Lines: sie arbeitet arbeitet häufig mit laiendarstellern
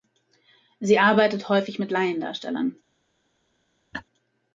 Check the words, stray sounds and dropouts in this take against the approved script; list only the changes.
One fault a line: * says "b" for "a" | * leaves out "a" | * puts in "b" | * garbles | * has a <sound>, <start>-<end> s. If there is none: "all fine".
* leaves out "arbeitet"
* has a laugh, 3.9-4.0 s